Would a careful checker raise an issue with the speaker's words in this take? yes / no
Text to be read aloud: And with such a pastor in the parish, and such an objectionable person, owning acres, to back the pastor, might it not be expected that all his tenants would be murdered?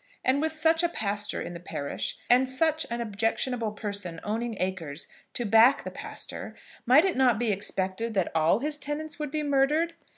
no